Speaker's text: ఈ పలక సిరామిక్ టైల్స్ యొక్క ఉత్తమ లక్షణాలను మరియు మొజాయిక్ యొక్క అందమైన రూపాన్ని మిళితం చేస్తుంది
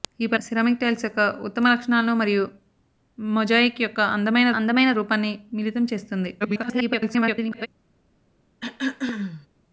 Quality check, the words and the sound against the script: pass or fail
fail